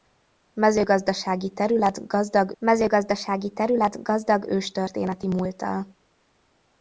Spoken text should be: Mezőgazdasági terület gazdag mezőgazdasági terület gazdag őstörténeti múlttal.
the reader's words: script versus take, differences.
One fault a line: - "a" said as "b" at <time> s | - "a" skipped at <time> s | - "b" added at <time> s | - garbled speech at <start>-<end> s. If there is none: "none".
none